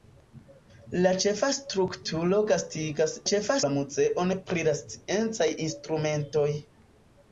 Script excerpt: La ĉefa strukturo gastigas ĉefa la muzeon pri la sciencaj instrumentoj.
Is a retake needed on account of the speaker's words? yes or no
no